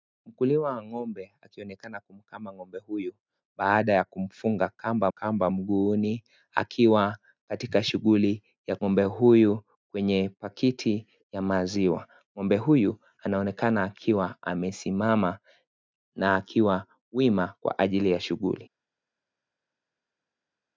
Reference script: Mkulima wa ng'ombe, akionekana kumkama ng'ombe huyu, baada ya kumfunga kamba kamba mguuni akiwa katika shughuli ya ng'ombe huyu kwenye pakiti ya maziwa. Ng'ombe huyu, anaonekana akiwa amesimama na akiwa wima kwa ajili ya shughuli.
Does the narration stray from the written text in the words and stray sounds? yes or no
no